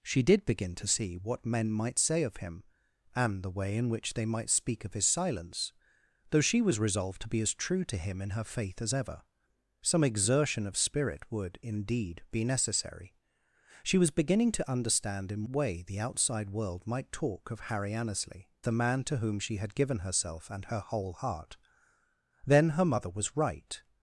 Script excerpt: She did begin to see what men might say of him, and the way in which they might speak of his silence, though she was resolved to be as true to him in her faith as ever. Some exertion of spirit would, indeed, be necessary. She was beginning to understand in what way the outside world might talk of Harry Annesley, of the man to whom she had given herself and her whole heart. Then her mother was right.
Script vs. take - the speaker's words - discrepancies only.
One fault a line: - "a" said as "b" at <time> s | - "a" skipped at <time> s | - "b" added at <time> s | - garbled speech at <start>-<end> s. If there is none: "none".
- "what" skipped at 15.4 s
- "of" skipped at 18.5 s